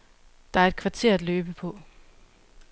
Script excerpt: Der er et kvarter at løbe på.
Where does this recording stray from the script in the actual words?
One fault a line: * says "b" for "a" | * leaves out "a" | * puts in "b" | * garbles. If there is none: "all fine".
all fine